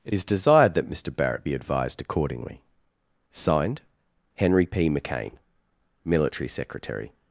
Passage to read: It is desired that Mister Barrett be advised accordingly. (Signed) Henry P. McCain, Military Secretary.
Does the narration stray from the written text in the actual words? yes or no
no